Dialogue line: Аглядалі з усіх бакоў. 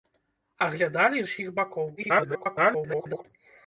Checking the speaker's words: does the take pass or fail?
fail